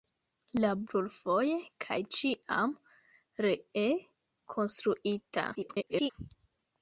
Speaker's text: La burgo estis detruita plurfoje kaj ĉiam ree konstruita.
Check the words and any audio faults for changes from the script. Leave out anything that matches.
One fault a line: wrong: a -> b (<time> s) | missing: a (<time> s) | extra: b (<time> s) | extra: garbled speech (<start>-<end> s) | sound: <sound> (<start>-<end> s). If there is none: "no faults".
missing: burgo estis detruita (0.7 s)
extra: garbled speech (5.5-6.1 s)